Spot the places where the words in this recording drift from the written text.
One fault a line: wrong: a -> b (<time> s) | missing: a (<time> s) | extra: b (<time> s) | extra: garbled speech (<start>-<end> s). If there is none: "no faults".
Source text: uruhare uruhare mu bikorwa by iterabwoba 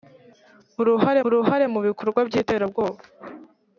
no faults